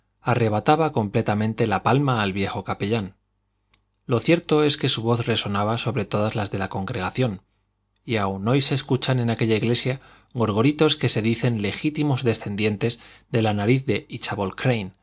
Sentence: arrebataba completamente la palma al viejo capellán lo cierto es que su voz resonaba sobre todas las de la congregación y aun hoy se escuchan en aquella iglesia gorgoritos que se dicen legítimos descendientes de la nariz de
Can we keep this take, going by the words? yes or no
yes